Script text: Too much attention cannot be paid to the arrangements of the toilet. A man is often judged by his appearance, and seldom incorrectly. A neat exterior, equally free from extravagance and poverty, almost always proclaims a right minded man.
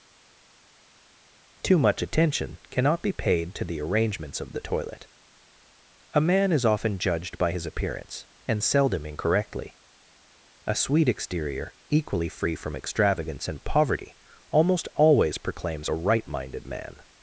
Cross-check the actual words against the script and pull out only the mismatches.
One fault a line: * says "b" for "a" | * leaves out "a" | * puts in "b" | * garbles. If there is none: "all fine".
* says "sweet" for "neat"